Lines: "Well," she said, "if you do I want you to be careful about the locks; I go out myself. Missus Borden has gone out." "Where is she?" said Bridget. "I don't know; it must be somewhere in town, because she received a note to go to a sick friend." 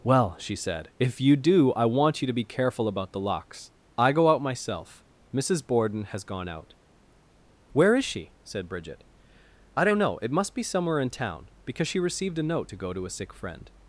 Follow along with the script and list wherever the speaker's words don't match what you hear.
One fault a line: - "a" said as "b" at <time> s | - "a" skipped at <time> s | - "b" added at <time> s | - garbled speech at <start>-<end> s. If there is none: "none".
none